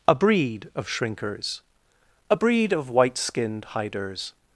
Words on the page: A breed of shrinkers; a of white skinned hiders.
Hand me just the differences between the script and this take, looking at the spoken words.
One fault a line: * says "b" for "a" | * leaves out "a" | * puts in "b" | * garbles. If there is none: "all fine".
* puts in "breed"